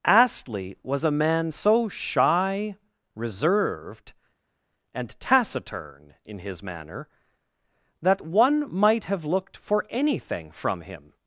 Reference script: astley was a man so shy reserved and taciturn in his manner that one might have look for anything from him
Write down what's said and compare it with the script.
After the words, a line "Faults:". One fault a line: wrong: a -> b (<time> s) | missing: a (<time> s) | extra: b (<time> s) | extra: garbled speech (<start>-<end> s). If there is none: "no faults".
astley was a man so shy reserved and taciturn in his manner that one might have looked for anything from him
Faults:
wrong: look -> looked (9.2 s)